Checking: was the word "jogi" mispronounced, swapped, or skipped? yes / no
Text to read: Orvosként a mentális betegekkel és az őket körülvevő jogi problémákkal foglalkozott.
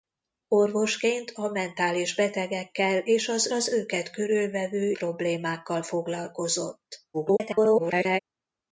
yes